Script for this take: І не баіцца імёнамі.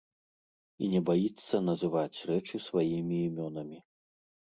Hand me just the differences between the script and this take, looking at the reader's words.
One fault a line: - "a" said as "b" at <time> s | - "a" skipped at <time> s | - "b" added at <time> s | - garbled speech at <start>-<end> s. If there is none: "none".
- "называць рэчы сваімі" added at 1.7 s